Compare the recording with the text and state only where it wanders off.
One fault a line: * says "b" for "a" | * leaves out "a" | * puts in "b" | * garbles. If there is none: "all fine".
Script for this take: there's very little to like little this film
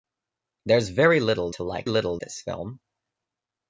all fine